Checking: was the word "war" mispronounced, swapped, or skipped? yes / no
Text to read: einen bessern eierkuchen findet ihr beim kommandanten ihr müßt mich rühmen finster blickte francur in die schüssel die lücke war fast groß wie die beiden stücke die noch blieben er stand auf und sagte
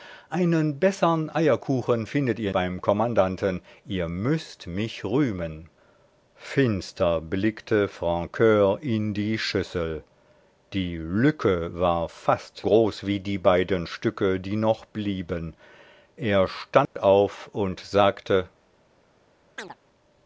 no